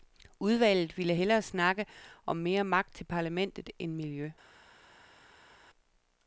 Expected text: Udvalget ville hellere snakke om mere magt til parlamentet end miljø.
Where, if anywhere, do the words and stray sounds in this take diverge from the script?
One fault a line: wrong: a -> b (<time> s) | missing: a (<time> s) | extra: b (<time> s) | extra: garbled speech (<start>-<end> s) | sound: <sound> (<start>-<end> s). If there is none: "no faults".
no faults